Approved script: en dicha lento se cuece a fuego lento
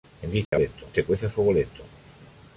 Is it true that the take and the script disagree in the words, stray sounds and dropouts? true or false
true